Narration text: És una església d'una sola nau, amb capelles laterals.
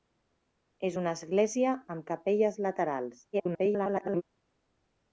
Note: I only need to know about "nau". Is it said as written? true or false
false